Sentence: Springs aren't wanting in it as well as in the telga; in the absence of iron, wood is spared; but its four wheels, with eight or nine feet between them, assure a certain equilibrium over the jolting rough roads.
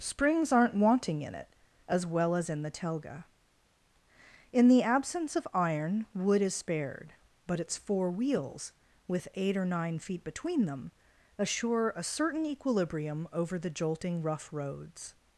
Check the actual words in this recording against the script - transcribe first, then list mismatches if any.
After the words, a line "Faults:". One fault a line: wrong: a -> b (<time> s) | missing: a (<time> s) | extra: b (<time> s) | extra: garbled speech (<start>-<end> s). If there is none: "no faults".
Springs aren't wanting in it as well as in the telga; in the absence of iron, wood is spared; but its four wheels, with eight or nine feet between them, assure a certain equilibrium over the jolting rough roads.
Faults:
no faults